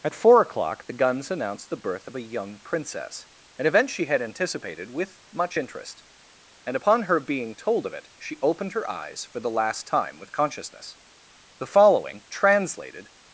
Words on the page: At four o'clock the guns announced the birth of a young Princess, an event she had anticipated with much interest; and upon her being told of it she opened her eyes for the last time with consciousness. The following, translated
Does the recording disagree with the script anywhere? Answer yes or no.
no